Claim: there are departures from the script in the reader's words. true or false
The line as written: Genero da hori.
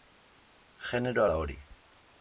false